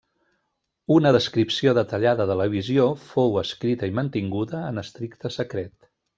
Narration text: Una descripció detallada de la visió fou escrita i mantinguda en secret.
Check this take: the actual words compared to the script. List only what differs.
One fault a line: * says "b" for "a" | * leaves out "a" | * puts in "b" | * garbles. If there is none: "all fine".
* puts in "estricte"